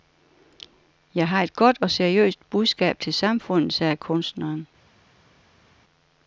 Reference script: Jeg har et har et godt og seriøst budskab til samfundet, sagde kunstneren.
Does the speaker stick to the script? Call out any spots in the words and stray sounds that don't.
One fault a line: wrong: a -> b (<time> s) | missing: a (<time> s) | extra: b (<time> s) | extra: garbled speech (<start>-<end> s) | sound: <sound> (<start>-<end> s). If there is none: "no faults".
missing: har et (1.6 s)